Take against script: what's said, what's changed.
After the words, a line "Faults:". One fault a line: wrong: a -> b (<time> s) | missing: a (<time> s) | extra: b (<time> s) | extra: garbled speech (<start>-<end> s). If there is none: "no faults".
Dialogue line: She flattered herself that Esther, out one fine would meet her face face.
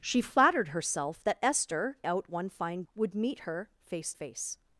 She flattered herself that Esther, out one fine would meet her face face.
Faults:
no faults